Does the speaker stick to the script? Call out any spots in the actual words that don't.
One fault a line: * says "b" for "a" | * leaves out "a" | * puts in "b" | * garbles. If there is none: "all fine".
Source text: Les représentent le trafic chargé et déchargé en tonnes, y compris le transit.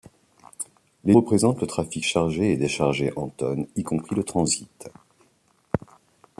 all fine